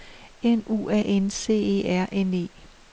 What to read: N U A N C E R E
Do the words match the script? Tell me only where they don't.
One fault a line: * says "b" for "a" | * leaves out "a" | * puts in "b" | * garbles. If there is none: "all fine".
* puts in "N"